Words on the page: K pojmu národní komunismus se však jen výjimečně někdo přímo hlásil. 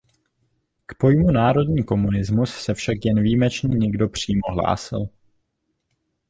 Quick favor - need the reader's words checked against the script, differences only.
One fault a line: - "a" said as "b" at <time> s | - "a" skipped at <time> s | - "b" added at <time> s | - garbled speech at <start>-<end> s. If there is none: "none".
none